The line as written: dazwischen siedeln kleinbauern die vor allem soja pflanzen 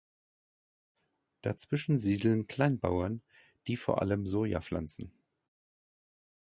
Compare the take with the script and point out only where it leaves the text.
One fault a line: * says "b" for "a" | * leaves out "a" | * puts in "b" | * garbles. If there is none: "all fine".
all fine